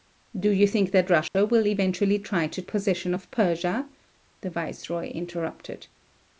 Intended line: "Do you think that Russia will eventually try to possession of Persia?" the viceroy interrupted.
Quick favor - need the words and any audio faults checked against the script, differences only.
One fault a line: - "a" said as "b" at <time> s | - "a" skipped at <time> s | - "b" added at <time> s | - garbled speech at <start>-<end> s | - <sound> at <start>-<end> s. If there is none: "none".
- dropout at 1.3-1.4 s